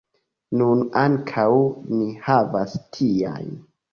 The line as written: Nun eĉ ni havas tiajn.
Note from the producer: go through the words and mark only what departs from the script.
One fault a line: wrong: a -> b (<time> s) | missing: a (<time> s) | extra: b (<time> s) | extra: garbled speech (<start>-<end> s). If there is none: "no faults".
wrong: eĉ -> ankaŭ (1.0 s)